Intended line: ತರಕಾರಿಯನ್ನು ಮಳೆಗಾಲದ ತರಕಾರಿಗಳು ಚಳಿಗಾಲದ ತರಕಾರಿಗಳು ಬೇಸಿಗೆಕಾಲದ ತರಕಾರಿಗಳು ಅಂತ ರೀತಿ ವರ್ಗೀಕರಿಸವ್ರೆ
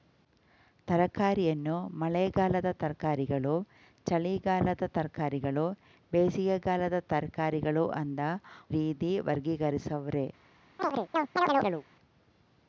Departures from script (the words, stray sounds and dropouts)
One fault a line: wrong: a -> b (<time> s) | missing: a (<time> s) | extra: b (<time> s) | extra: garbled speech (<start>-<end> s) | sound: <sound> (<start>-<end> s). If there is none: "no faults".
sound: chirp (10.8-11.8 s)